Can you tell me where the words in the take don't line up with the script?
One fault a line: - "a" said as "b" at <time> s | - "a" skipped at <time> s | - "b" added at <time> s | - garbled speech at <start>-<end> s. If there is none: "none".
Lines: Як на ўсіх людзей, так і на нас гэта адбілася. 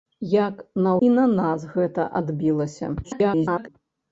- "ўсіх людзей так" skipped at 0.9 s
- garbled speech at 3.0-3.7 s